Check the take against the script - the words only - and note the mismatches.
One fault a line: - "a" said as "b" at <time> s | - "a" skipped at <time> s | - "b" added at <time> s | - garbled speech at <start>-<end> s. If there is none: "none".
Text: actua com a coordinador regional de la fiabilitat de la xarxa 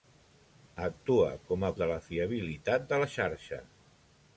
- "coordinador regional" skipped at 1.7 s